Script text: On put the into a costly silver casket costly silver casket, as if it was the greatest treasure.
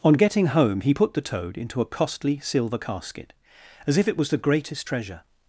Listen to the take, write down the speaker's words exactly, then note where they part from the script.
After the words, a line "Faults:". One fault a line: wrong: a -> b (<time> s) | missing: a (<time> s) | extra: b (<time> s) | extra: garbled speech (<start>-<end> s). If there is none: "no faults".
On getting home he put the toad into a costly silver casket, as if it was the greatest treasure.
Faults:
extra: getting home he (0.1 s)
extra: toad (1.2 s)
missing: costly silver casket (3.3 s)